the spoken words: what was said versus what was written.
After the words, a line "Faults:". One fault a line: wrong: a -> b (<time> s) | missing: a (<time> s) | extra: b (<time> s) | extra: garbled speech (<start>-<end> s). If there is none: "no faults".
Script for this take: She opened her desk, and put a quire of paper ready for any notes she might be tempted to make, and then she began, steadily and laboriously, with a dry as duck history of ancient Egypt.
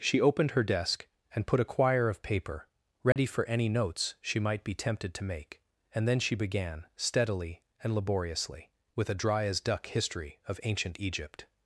She opened her desk, and put a quire of paper ready for any notes she might be tempted to make, and then she began, steadily and laboriously, with a dry as duck history of ancient Egypt.
Faults:
no faults